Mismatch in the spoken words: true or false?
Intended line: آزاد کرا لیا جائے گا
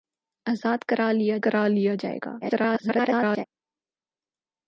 true